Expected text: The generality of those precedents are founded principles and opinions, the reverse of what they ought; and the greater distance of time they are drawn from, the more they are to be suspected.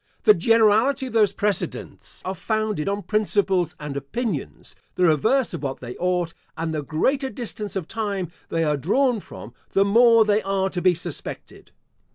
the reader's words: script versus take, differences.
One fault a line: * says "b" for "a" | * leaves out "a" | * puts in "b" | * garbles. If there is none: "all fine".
* puts in "on"